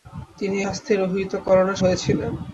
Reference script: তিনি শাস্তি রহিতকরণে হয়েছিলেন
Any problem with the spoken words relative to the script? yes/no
no